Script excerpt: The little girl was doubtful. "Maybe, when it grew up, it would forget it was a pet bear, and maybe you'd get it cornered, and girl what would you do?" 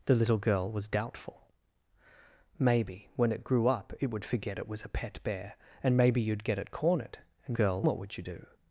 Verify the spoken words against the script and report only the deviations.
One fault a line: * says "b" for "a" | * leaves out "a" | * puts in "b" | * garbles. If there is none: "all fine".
all fine